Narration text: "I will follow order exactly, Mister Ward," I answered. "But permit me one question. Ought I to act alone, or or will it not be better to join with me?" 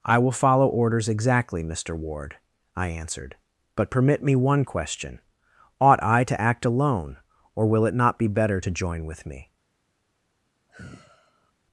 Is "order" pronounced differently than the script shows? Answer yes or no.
yes